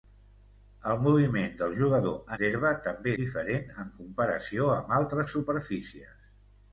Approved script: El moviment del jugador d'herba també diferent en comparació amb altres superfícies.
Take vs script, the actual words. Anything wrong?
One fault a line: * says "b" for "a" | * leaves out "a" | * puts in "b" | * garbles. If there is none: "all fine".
all fine